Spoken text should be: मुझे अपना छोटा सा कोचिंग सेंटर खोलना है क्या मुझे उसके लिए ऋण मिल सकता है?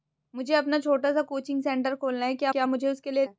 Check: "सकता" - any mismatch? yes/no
yes